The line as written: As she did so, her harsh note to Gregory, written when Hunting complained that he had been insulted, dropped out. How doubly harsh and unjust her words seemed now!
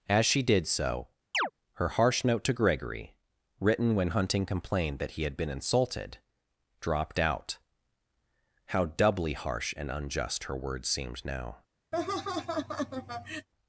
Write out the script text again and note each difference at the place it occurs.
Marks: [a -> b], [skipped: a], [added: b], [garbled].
As she did so, her harsh note to Gregory, written when Hunting complained that he had been insulted, dropped out. How doubly harsh and unjust her words seemed now!